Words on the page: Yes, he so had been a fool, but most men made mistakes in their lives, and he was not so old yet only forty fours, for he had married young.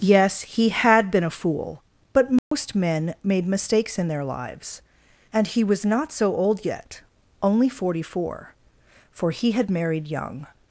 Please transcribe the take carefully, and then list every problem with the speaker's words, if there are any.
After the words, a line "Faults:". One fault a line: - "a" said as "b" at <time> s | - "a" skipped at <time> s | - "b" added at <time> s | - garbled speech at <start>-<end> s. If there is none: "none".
Yes, he had been a fool, but most men made mistakes in their lives, and he was not so old yet only forty four, for he had married young.
Faults:
- "so" skipped at 0.7 s
- "fours" said as "four" at 8.0 s